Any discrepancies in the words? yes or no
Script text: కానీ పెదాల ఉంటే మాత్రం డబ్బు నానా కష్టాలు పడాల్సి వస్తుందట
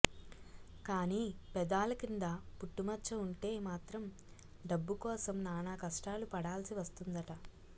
yes